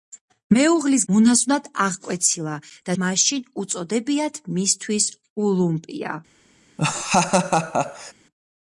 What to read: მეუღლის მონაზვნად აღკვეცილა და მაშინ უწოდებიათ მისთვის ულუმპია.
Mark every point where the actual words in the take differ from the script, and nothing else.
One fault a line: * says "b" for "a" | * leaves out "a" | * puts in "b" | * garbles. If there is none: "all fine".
all fine